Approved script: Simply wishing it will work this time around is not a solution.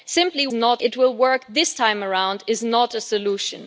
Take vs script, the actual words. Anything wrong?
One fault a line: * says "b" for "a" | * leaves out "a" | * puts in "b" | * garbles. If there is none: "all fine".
* says "not" for "wishing"